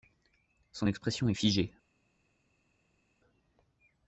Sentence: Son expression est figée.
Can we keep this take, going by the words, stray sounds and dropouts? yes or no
yes